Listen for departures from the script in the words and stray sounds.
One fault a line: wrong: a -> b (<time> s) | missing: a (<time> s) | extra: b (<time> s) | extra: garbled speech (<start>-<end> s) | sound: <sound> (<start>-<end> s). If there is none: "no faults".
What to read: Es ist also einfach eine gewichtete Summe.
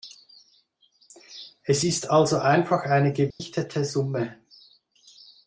sound: dropout (3.3-3.4 s)